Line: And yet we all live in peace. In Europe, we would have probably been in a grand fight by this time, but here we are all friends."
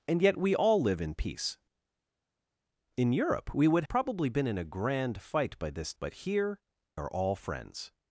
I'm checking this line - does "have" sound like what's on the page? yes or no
no